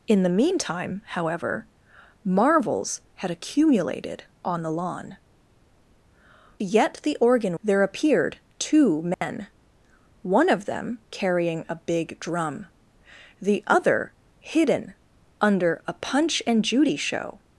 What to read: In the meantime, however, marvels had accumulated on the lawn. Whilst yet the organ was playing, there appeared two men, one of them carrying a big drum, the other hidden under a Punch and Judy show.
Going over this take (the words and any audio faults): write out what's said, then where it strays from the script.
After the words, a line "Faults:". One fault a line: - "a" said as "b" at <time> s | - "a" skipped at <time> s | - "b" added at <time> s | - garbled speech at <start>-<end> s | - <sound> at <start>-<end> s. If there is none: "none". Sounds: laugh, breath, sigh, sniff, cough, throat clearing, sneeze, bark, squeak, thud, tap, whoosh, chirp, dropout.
In the meantime, however, marvels had accumulated on the lawn. Yet the organ there appeared two men, one of them carrying a big drum, the other hidden under a Punch and Judy show.
Faults:
- "Whilst" skipped at 5.2 s
- "was playing" skipped at 7.6 s
- dropout at 9.1-9.2 s